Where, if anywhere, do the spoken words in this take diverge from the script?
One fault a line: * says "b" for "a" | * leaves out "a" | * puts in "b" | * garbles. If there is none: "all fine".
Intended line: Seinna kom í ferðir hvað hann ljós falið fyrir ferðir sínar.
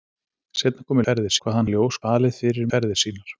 all fine